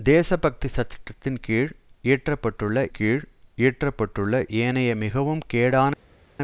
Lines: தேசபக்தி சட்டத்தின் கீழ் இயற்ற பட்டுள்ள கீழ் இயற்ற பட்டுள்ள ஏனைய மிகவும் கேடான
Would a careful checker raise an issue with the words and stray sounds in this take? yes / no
no